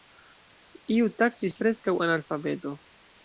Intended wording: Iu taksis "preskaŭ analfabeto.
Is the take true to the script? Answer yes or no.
yes